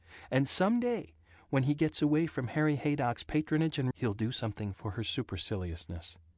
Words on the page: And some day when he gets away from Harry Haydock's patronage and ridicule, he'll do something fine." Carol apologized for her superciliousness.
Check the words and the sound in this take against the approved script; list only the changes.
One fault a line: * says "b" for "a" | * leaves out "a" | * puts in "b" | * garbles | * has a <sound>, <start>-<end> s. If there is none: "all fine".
* leaves out "ridicule"
* leaves out "fine Carol apologized"